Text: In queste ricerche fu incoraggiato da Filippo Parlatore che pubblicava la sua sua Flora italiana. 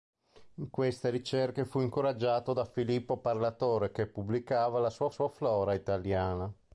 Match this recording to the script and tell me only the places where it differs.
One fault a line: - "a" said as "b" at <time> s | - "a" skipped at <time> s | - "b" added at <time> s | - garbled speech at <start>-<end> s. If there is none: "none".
none